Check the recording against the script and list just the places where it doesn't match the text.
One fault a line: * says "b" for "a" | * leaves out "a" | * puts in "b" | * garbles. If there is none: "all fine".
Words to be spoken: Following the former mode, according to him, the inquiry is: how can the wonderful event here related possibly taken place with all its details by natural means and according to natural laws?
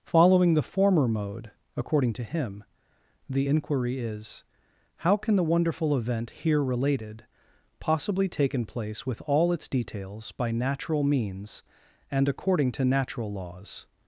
all fine